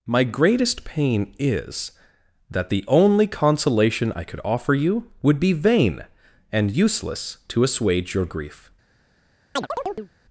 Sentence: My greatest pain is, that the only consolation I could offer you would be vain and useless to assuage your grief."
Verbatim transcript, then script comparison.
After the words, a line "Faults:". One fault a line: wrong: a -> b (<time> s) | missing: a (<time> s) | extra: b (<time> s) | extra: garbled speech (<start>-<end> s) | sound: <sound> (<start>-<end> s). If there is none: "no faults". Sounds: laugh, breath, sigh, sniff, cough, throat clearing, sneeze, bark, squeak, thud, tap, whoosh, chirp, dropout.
My greatest pain is, that the only consolation I could offer you would be vain and useless to assuage your grief."
Faults:
sound: chirp (9.6-10.1 s)